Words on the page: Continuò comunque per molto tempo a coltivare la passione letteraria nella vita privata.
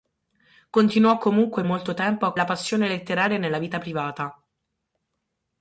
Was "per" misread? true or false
true